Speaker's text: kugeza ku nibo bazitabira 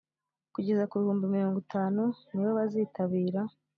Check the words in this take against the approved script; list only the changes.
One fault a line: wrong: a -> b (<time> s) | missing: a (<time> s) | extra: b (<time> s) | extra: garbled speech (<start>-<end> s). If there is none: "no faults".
extra: bihumbi mirongo itanu (1.0 s)